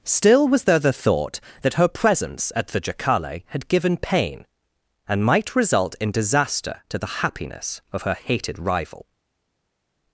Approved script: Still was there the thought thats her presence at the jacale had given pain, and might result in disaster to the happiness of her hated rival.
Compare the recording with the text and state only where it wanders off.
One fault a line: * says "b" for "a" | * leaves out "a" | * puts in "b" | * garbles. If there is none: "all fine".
* says "that" for "thats"